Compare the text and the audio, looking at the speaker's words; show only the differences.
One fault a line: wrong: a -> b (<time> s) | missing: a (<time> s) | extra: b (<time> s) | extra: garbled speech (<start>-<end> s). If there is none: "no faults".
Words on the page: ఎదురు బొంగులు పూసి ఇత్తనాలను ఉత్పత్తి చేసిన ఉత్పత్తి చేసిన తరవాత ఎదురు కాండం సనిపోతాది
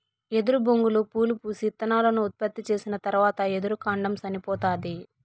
extra: పూలు (1.1 s)
missing: ఉత్పత్తి చేసిన (3.0 s)